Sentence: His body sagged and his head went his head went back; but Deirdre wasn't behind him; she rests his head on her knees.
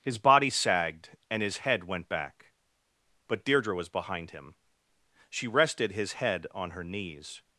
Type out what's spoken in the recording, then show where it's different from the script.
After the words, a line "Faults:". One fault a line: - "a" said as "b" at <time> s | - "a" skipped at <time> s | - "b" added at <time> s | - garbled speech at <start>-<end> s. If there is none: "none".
His body sagged and his head went back; but Deirdre was behind him; she rested his head on her knees.
Faults:
- "his head went" skipped at 2.1 s
- "wasn't" said as "was" at 3.8 s
- "rests" said as "rested" at 5.5 s